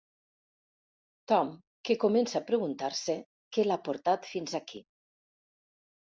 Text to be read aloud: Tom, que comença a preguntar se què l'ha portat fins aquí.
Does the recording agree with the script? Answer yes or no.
yes